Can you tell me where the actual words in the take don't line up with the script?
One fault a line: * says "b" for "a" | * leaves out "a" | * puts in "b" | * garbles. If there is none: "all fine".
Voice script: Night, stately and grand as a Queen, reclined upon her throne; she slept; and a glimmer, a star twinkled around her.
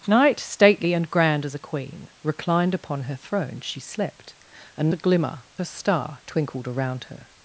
all fine